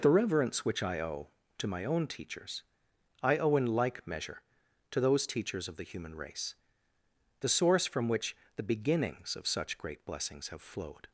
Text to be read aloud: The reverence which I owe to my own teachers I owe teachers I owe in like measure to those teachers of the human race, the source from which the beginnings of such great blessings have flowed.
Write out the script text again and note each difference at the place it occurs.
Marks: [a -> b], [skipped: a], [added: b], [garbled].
The reverence which I owe to my own teachers I owe [skipped: teachers I owe] in like measure to those teachers of the human race, the source from which the beginnings of such great blessings have flowed.